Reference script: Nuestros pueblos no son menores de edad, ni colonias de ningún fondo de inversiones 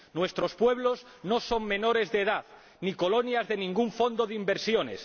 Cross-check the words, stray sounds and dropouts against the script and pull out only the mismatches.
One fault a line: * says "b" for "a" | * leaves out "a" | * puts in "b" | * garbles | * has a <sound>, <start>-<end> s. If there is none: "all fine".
all fine